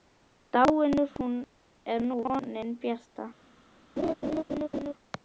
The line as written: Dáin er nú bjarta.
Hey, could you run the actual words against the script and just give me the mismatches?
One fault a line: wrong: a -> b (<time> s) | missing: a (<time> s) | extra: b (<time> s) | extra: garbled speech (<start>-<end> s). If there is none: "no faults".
extra: vonin (2.2 s)